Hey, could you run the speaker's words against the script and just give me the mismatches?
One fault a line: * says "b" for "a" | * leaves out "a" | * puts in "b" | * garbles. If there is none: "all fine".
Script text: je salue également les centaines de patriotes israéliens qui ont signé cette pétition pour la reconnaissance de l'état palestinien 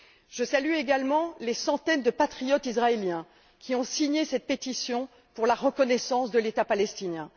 all fine